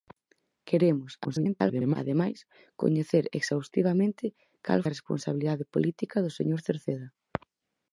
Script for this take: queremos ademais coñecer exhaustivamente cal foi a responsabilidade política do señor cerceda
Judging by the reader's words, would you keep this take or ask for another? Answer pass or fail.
fail